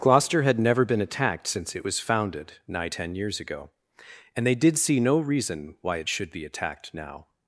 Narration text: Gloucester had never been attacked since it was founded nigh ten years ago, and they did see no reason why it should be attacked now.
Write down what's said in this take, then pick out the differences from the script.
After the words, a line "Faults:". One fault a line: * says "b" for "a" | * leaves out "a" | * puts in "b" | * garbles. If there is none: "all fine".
Gloucester had never been attacked since it was founded nigh ten years ago, and they did see no reason why it should be attacked now.
Faults:
all fine